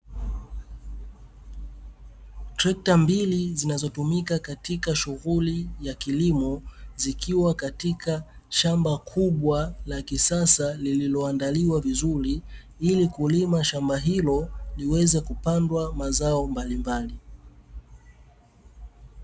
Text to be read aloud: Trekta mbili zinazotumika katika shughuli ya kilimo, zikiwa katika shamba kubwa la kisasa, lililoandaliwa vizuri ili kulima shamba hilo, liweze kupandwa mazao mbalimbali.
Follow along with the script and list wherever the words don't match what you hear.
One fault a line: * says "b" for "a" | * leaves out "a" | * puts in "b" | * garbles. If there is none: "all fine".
all fine